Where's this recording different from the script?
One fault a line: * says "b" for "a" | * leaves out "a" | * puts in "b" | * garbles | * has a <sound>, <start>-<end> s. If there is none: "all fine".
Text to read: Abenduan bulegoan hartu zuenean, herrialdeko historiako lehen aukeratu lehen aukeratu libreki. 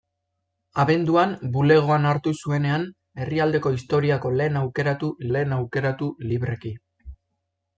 all fine